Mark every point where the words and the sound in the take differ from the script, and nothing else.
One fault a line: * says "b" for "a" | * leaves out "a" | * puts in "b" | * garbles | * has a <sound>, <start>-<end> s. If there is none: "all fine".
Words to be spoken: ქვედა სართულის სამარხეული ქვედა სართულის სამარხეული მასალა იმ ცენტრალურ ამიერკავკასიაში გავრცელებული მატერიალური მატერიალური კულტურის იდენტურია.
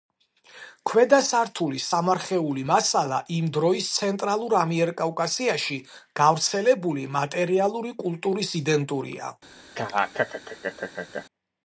* leaves out "ქვედა სართულის სამარხეული"
* puts in "დროის"
* leaves out "მატერიალური"
* has a laugh, 9.7-11.3 s